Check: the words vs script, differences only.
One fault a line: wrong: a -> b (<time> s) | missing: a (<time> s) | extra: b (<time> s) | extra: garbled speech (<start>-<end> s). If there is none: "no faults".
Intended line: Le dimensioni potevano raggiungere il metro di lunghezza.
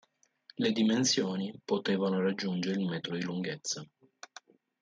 no faults